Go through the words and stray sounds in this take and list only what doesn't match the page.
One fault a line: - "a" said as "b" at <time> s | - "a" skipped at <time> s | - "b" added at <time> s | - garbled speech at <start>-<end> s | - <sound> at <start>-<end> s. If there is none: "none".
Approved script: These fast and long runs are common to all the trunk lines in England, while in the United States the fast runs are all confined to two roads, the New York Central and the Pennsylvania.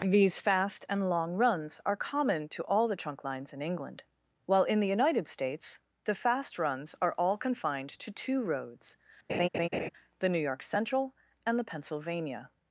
- laugh at 9.3-9.9 s